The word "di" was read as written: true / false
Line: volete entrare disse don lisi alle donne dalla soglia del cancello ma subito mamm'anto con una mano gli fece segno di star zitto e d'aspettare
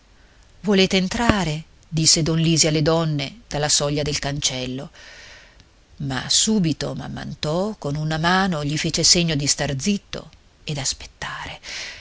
true